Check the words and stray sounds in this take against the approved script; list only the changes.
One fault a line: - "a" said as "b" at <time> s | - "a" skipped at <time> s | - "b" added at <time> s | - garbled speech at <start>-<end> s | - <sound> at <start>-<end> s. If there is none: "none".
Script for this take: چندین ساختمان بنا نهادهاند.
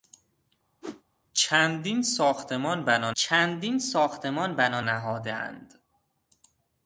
- whoosh at 0.8-1.0 s
- "چندین ساختمان بنا" added at 3.1 s